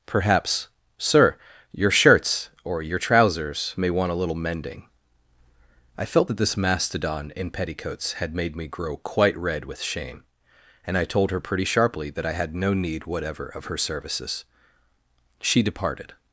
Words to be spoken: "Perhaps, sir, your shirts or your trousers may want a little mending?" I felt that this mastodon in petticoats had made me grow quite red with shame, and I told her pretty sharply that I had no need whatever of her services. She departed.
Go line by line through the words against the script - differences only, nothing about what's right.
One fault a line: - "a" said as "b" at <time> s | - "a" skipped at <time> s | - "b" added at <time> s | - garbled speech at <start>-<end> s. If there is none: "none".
none